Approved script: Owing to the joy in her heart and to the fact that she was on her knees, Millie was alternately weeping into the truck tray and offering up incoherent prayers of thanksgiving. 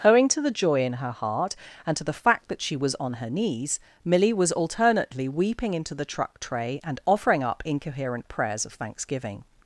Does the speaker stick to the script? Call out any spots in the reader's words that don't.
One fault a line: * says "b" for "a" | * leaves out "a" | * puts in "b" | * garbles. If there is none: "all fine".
all fine